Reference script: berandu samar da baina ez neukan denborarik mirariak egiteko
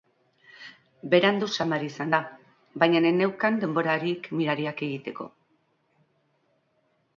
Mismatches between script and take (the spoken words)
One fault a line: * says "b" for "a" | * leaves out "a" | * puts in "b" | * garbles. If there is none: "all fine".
* puts in "izan"